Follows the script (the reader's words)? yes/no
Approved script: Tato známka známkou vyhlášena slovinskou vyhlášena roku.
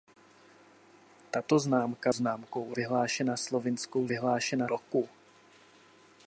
yes